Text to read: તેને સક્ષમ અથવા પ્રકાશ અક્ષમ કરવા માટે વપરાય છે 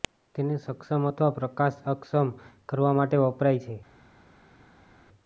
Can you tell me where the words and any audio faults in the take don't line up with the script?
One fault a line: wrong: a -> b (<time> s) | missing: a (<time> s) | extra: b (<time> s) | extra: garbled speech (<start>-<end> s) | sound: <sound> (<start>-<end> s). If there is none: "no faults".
no faults